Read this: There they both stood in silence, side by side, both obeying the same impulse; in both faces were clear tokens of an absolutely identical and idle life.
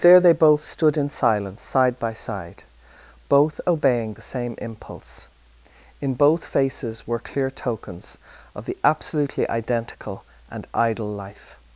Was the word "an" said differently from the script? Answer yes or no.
yes